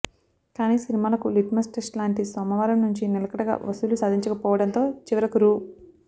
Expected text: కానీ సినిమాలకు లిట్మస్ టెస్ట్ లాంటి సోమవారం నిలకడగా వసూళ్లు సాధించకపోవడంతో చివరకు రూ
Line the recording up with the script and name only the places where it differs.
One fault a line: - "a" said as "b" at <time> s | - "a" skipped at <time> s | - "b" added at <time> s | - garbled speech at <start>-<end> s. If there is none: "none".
- "నుంచి" added at 2.8 s